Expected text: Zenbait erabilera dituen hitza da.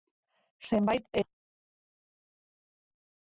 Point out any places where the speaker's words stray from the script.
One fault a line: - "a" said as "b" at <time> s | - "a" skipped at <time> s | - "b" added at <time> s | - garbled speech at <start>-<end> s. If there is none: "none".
- "erabilera dituen hitza" skipped at 1.2 s